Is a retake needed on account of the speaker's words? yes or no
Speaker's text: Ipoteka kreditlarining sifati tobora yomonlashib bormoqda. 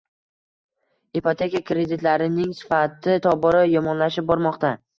no